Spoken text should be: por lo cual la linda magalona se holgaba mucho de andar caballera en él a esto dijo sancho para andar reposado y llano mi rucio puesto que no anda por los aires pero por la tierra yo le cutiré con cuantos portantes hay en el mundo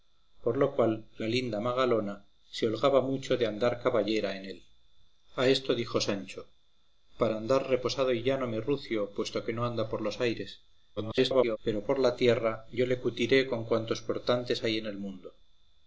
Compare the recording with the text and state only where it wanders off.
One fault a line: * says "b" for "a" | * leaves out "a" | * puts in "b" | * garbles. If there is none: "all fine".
* garbles